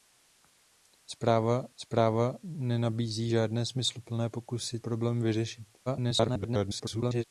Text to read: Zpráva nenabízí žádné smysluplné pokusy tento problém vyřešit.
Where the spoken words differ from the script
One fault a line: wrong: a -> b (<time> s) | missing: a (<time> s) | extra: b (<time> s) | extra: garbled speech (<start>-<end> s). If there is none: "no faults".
extra: zpráva (1.8 s)
missing: tento (4.8 s)
extra: garbled speech (5.9-7.2 s)